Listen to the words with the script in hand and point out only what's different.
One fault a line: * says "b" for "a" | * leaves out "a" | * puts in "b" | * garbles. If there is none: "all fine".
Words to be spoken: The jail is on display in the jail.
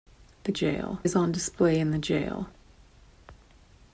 all fine